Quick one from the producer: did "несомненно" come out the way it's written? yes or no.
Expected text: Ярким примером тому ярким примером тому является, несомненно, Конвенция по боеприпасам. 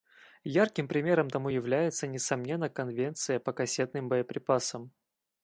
yes